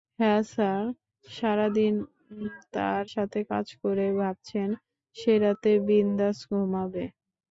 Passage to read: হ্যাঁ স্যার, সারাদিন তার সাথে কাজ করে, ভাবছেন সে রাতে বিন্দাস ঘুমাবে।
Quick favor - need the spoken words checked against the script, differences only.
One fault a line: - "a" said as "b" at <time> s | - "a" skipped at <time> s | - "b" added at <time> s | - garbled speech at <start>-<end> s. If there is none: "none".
none